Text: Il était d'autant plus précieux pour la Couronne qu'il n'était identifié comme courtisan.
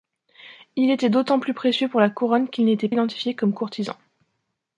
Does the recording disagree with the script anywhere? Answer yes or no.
no